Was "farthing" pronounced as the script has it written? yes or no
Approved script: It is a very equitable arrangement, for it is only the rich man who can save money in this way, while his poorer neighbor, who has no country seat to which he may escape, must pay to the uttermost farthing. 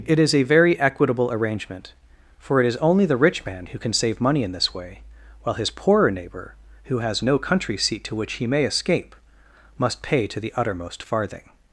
yes